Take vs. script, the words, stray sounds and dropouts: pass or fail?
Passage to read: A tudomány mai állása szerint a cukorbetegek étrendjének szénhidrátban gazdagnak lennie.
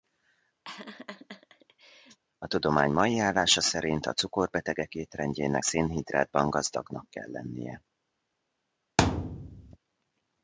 fail